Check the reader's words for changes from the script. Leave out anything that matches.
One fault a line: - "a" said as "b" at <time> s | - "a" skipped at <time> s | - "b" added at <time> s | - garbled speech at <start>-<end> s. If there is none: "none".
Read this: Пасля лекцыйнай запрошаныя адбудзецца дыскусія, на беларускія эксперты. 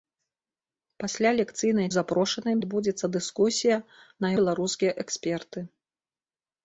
none